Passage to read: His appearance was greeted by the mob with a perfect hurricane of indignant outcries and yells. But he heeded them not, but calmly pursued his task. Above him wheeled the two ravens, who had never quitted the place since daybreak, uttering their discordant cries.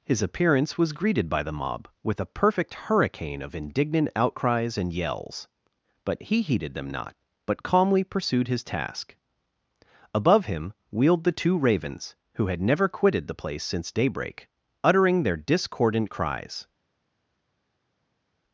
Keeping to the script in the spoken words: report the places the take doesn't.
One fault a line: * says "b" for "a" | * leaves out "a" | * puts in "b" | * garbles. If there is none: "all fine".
all fine